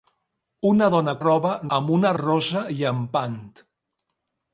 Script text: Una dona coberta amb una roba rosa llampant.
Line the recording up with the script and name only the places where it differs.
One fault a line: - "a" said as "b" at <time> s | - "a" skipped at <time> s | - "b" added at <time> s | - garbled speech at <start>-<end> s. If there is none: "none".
- "coberta" said as "roba" at 1.2 s
- "roba" skipped at 2.1 s